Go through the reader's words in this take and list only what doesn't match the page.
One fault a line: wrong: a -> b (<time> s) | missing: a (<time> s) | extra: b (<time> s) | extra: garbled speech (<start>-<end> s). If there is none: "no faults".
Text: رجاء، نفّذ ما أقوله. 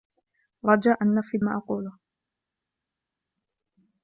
no faults